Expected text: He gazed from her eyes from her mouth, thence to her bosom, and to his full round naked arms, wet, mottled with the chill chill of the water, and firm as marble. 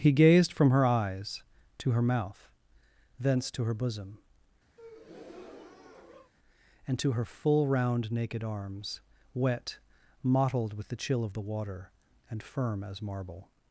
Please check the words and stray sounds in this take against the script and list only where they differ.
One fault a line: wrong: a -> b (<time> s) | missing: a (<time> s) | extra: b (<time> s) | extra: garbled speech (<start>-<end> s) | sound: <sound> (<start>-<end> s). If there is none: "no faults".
wrong: from -> to (1.8 s)
sound: breath (4.8-6.3 s)
wrong: his -> her (7.1 s)
missing: chill (11.2 s)